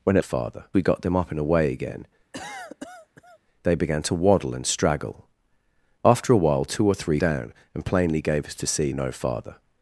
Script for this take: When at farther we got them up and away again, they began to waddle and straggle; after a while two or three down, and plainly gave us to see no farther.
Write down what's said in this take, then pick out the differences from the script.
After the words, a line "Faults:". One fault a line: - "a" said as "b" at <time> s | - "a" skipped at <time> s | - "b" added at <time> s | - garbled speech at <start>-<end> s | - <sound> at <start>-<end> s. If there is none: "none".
When at farther we got them up and away again, they began to waddle and straggle; after a while two or three down, and plainly gave us to see no farther.
Faults:
- cough at 2.3-3.4 s